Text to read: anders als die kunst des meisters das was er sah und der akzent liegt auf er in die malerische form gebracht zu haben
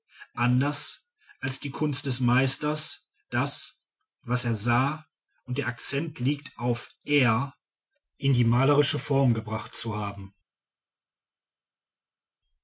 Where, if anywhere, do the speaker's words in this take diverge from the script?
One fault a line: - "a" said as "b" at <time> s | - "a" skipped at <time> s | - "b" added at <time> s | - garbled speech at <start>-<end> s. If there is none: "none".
none